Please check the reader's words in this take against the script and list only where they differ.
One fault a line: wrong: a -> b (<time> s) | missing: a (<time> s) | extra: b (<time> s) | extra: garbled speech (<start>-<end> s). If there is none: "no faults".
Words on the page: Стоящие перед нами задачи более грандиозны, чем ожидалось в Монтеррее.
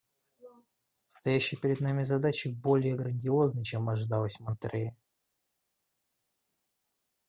no faults